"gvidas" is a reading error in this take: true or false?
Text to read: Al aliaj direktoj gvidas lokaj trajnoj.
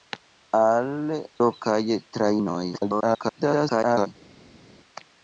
true